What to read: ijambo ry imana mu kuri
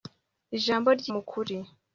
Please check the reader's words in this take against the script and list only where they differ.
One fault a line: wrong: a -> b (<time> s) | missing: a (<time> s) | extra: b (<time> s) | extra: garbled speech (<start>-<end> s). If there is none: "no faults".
missing: imana (1.1 s)